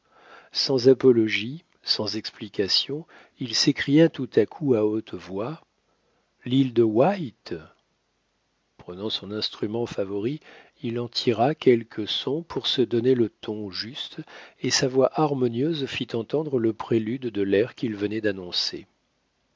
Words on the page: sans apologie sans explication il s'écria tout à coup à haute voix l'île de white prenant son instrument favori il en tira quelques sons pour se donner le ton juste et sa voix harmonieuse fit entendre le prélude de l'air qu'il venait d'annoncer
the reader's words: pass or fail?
pass